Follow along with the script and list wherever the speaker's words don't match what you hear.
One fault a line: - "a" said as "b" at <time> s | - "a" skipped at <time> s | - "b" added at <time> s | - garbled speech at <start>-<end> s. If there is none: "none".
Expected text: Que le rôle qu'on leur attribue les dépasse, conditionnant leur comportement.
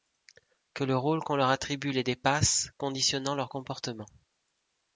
none